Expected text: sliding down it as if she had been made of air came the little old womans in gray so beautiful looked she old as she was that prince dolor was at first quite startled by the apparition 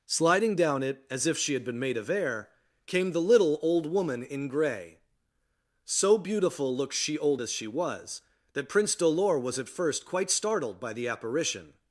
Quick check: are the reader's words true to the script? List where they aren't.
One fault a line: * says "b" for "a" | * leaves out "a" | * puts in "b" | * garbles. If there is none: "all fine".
* says "woman" for "womans"